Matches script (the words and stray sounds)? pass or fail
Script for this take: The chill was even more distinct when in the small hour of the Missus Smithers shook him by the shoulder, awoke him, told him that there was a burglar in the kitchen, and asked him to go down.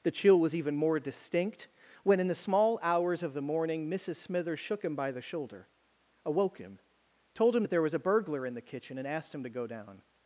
fail